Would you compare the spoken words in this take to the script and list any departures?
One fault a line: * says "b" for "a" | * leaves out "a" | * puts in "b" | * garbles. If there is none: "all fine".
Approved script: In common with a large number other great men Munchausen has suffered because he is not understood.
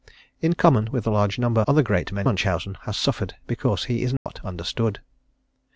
all fine